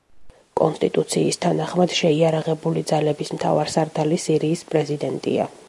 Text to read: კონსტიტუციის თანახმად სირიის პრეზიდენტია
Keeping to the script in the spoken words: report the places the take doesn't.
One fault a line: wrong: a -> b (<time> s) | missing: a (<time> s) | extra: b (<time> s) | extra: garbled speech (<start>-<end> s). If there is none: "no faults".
extra: შეიარაღებული ძალების მთავარსარდალი (2.0 s)